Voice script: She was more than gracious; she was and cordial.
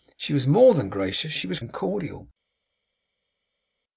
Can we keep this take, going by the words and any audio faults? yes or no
yes